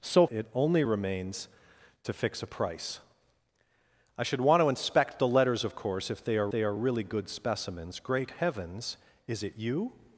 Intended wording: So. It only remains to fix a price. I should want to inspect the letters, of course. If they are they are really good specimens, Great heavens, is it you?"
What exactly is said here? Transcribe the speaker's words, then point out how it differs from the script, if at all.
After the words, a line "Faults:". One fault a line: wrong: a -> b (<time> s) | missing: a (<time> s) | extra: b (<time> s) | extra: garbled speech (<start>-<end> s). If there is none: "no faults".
So. It only remains to fix a price. I should want to inspect the letters, of course. If they are they are really good specimens, Great heavens, is it you?"
Faults:
no faults